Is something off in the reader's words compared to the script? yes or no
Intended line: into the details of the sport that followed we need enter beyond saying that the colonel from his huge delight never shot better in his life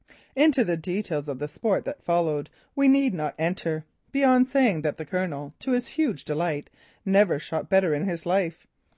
yes